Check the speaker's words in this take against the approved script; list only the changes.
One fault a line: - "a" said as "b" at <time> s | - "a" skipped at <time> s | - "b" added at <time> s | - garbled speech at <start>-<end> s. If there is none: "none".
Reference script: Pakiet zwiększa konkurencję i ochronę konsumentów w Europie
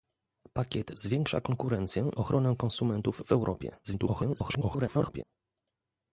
- "i" skipped at 2.1 s
- garbled speech at 3.8-5.2 s